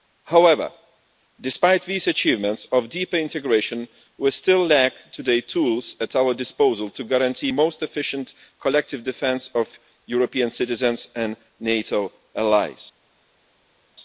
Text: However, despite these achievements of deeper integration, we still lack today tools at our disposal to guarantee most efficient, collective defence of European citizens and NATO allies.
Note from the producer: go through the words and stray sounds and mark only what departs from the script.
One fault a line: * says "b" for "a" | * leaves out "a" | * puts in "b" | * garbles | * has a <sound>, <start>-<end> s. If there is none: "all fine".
all fine